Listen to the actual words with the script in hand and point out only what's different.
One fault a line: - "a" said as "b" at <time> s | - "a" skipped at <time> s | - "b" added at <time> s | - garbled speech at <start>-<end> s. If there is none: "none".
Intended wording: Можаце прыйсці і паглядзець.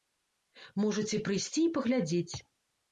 none